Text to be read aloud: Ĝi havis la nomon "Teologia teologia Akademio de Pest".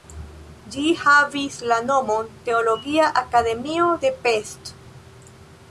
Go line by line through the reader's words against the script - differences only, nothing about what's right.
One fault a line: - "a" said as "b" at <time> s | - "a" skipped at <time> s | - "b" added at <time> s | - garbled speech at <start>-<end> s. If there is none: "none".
- "teologia" skipped at 3.1 s